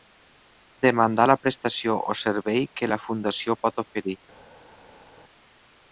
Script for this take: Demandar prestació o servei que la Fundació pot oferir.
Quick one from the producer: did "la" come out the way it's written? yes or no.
yes